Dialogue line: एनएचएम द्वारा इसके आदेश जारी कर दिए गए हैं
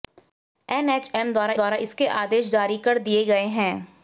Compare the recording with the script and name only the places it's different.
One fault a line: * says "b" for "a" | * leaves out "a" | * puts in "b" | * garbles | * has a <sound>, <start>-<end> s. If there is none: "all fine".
* puts in "द्वारा"